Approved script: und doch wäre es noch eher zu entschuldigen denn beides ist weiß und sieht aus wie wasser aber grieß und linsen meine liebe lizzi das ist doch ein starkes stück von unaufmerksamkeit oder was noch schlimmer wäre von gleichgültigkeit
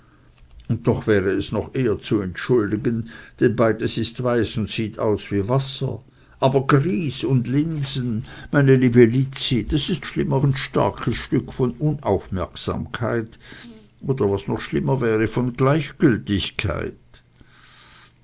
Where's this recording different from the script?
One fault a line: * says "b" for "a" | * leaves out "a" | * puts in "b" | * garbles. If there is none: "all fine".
* says "schlimmer" for "doch"